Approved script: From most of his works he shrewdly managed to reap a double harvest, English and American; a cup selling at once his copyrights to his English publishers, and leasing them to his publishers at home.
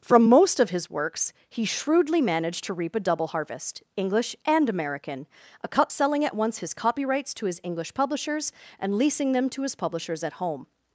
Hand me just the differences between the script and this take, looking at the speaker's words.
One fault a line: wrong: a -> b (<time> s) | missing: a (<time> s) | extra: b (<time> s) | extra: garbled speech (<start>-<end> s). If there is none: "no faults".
no faults